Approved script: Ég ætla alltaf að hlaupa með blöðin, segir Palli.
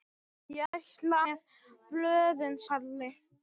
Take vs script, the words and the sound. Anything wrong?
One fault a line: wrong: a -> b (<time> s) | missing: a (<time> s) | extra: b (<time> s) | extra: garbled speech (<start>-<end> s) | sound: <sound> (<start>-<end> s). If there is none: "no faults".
sound: dropout (0.7-0.7 s)
missing: alltaf að hlaupa (1.2 s)
missing: segir (2.6 s)